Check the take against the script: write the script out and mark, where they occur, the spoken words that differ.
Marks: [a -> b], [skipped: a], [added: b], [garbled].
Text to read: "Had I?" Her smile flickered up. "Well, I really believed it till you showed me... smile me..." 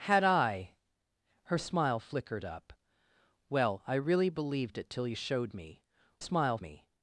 "Had I?" Her smile flickered up. "Well, I really believed it till you showed me... smile me..."